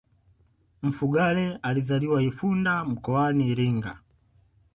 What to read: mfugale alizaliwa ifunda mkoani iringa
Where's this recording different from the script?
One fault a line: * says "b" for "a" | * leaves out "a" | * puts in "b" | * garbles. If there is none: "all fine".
all fine